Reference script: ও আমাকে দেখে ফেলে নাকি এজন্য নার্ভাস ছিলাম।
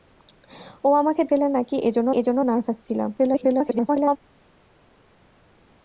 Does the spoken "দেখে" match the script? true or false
false